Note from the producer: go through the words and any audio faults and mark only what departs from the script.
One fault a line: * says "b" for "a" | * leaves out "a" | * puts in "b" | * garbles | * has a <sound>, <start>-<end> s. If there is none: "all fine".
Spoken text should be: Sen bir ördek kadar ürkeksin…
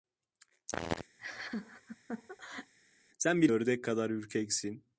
* has a laugh, 1.2-2.7 s